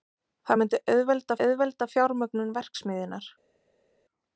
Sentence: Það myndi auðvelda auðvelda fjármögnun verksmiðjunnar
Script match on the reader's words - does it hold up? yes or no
yes